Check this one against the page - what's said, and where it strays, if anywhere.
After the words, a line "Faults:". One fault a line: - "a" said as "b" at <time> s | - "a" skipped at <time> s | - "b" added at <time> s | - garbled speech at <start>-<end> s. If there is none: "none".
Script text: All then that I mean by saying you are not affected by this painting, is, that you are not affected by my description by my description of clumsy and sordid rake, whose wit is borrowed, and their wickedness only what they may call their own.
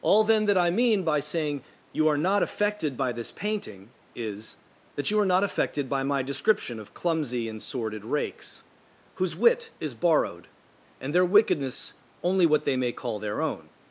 All then that I mean by saying you are not affected by this painting, is, that you are not affected by my description of clumsy and sordid rakes, whose wit is borrowed, and their wickedness only what they may call their own.
Faults:
- "by my description" skipped at 6.8 s
- "rake" said as "rakes" at 8.1 s